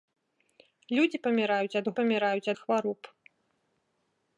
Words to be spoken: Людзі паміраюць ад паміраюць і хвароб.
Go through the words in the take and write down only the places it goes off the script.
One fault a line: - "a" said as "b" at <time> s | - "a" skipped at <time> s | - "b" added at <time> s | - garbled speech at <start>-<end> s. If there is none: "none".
none